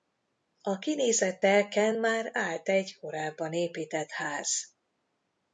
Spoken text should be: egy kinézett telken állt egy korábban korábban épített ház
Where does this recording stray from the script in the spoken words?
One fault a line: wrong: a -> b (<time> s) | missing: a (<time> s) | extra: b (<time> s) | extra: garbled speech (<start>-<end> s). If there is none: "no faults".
wrong: egy -> a (0.6 s)
extra: már (1.9 s)
missing: korábban (3.5 s)